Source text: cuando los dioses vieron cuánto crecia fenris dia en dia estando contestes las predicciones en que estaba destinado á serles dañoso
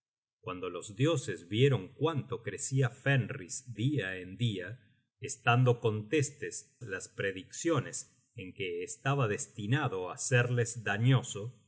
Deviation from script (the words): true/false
false